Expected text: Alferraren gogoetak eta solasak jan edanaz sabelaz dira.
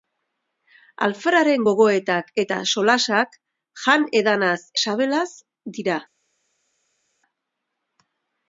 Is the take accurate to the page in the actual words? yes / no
yes